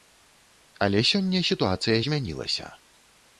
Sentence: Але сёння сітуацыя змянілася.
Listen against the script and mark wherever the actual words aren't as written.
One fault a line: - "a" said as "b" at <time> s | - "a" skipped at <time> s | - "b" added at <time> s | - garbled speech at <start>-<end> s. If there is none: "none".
none